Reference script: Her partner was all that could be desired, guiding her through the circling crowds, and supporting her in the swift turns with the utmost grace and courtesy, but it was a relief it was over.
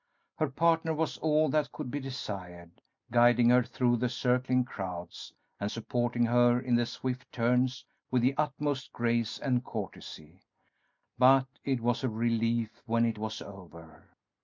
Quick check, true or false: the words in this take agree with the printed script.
false